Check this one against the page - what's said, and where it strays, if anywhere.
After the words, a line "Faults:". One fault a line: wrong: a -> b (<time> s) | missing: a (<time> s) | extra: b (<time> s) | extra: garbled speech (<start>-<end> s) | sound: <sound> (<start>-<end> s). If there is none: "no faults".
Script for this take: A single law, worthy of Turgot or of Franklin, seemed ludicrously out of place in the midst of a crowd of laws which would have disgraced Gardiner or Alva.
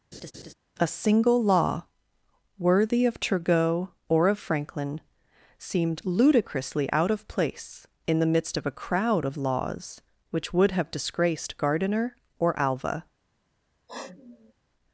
A single law, worthy of Turgot or of Franklin, seemed ludicrously out of place in the midst of a crowd of laws which would have disgraced Gardiner or Alva.
Faults:
sound: laugh (0.1-0.5 s)
sound: sniff (13.9-14.5 s)